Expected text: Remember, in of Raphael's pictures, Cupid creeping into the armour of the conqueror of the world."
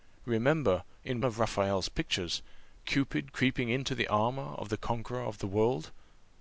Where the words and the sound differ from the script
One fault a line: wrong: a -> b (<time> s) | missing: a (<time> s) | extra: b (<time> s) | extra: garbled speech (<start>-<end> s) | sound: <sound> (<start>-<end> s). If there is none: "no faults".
no faults